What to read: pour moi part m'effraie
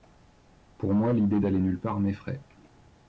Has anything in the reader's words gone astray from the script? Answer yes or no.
yes